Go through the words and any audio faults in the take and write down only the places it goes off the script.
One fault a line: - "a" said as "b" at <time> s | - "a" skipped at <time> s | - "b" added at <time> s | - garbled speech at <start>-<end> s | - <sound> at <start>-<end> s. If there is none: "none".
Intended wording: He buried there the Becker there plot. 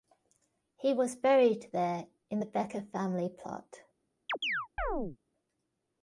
- "was" added at 0.9 s
- "in" added at 2.3 s
- "there" said as "family" at 2.9 s
- chirp at 4.3-5.2 s